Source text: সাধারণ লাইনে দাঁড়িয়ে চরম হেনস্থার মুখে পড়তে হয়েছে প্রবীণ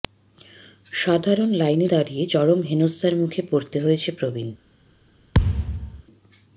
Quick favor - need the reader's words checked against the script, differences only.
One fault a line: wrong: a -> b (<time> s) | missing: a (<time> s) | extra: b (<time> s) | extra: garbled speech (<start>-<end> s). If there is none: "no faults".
no faults